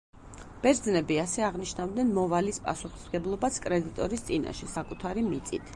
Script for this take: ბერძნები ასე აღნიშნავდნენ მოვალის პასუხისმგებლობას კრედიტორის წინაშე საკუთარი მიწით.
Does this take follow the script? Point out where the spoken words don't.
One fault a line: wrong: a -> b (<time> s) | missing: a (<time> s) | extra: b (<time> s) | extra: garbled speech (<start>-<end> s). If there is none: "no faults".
no faults